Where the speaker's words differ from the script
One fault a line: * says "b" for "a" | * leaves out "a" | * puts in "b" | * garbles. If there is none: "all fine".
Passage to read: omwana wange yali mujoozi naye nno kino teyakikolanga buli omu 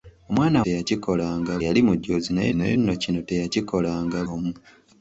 * says "teyakikolanga" for "wange"
* puts in "naye"
* leaves out "buli"